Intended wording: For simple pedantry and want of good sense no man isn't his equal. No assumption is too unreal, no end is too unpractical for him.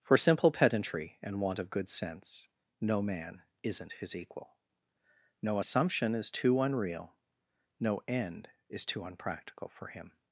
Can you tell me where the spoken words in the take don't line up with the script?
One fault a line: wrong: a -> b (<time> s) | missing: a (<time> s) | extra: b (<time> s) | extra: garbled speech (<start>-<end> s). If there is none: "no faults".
no faults